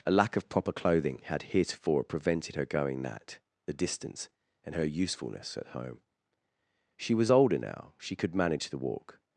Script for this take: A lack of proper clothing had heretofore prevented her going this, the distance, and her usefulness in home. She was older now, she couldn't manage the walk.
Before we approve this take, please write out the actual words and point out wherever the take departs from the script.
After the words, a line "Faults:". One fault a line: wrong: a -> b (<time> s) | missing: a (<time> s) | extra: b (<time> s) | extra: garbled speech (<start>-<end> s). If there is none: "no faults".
A lack of proper clothing had heretofore prevented her going that, the distance, and her usefulness at home. She was older now, she could manage the walk.
Faults:
wrong: this -> that (3.0 s)
wrong: in -> at (5.6 s)
wrong: couldn't -> could (8.2 s)